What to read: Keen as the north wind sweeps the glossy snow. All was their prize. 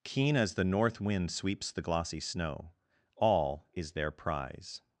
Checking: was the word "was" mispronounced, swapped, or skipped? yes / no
yes